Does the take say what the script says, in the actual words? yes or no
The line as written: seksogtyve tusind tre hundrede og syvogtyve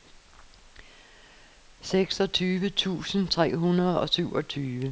yes